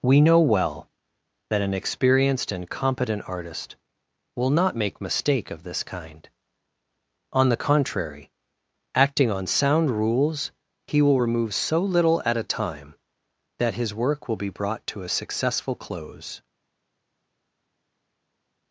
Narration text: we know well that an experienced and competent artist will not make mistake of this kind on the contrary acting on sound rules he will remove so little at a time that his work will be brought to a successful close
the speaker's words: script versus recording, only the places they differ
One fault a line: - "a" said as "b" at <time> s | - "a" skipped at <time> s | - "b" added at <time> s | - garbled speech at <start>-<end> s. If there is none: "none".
none